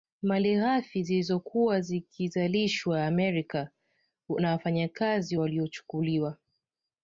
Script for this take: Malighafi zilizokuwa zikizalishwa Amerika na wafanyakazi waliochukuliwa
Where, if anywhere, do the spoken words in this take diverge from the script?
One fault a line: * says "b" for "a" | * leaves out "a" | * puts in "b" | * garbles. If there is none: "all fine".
all fine